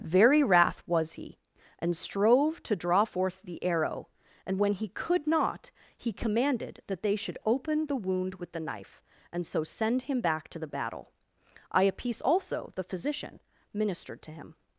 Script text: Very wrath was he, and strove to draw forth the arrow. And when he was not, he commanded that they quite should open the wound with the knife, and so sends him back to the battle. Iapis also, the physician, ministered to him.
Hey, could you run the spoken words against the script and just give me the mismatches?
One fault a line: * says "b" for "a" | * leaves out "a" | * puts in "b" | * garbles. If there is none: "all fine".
* says "could" for "was"
* leaves out "quite"
* says "send" for "sends"